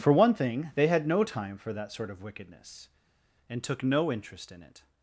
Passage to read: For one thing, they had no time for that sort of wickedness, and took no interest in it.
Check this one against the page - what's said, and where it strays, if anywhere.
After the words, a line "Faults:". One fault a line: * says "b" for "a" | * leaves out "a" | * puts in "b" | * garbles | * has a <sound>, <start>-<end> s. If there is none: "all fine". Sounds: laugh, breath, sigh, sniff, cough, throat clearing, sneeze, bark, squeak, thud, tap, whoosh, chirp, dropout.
For one thing, they had no time for that sort of wickedness, and took no interest in it.
Faults:
all fine